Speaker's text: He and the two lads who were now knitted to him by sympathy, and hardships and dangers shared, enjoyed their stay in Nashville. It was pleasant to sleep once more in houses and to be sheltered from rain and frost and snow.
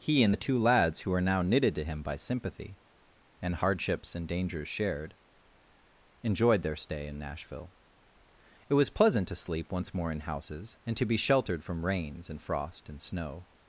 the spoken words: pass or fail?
fail